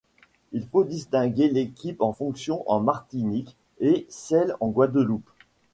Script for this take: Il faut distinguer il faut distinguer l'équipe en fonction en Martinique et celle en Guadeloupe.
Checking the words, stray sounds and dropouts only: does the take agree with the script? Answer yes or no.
no